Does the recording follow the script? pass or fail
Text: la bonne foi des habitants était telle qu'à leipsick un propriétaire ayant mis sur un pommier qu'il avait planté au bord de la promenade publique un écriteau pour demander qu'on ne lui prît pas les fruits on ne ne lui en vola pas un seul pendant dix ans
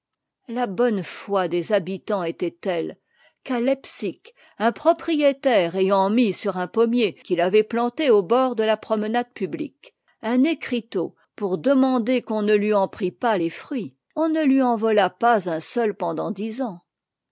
fail